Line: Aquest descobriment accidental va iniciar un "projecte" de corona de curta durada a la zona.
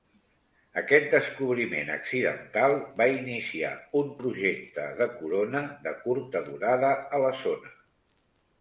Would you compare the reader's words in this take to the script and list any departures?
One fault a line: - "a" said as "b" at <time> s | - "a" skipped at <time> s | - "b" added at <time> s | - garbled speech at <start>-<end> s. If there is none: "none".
none